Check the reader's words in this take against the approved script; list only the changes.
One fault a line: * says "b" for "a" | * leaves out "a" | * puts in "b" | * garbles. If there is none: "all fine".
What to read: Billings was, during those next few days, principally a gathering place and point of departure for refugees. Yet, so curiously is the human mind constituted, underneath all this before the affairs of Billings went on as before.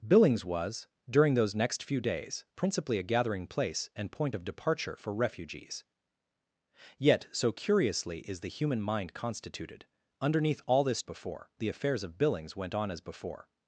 all fine